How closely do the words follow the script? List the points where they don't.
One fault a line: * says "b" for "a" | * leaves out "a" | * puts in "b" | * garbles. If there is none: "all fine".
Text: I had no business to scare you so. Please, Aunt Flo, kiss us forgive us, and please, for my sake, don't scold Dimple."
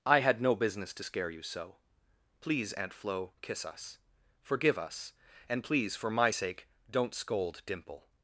all fine